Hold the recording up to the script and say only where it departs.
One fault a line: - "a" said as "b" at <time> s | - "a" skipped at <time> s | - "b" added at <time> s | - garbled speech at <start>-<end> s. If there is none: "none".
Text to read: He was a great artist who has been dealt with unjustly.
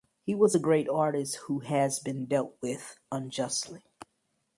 none